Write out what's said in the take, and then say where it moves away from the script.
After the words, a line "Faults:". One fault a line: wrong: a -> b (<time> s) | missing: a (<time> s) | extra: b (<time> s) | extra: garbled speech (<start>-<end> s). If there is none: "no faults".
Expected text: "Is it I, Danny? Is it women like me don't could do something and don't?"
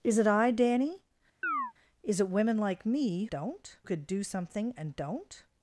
"Is it I, Danny? Is it women like me don't could do something and don't?"
Faults:
no faults